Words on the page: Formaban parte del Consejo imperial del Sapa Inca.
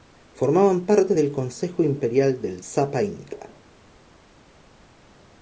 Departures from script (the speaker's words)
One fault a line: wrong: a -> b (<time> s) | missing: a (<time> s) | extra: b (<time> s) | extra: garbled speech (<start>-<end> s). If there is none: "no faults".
no faults